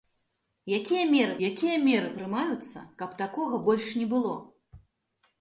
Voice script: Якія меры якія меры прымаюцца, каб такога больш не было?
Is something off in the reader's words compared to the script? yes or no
no